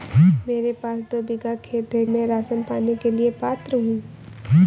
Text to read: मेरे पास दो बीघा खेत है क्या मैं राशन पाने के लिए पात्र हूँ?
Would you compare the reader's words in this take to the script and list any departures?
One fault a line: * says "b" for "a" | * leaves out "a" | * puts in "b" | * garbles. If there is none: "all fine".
* leaves out "क्या"